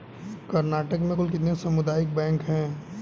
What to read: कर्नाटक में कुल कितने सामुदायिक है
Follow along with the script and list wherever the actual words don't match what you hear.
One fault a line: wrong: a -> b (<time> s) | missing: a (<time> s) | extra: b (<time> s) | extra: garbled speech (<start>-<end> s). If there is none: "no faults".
extra: बैंक (2.1 s)